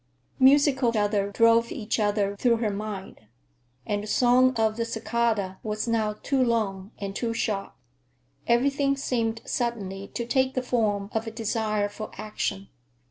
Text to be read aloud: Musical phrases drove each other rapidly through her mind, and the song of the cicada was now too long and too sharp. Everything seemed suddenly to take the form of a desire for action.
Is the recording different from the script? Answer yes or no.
yes